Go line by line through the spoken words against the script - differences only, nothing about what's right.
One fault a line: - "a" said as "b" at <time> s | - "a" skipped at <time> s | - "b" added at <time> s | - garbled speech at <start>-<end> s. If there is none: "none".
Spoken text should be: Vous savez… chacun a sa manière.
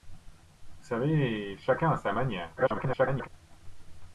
- garbled speech at 2.6-3.3 s